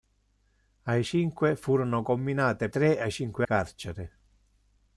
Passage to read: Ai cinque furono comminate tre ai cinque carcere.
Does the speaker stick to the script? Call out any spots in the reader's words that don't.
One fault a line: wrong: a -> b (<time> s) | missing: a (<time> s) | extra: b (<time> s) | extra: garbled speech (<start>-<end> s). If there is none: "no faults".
no faults